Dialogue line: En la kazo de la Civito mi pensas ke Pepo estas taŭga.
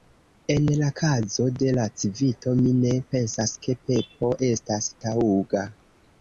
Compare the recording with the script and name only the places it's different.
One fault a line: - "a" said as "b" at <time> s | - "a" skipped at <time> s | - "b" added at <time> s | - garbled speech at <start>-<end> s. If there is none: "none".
- "ne" added at 2.8 s